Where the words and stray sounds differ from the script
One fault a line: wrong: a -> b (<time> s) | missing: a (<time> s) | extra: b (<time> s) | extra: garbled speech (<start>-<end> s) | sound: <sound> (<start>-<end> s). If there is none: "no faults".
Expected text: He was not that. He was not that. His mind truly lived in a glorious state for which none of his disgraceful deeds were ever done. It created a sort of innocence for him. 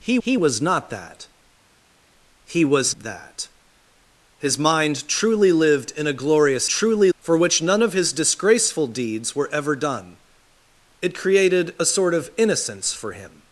extra: he (0.2 s)
missing: not (2.9 s)
wrong: state -> truly (6.7 s)